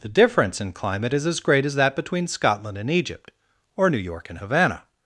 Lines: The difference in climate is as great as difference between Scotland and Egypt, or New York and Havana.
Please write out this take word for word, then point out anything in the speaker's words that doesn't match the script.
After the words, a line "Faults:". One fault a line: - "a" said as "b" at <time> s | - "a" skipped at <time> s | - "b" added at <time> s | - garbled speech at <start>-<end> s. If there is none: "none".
The difference in climate is as great as that between Scotland and Egypt, or New York and Havana.
Faults:
- "difference" said as "that" at 1.8 s